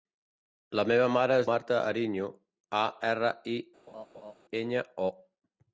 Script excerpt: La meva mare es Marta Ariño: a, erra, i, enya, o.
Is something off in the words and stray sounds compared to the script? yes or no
yes